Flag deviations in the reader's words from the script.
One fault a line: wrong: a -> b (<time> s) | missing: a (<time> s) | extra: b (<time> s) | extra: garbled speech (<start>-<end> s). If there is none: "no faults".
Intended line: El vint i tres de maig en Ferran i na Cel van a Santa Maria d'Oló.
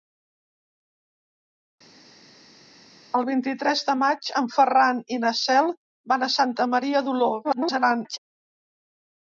extra: garbled speech (7.4-8.2 s)